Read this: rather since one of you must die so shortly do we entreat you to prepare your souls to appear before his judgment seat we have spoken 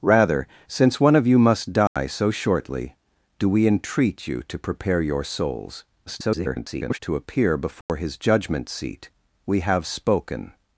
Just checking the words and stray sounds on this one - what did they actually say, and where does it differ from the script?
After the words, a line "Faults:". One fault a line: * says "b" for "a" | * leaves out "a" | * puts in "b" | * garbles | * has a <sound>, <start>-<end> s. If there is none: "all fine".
rather since one of you must die so shortly do we entreat you to prepare your souls [garbled] to appear before his judgment seat we have spoken
Faults:
* has a dropout, 1.9-2.0 s
* garbles
* has a dropout, 7.8-7.9 s